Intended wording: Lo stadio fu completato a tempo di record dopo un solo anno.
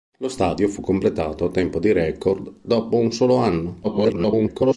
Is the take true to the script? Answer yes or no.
no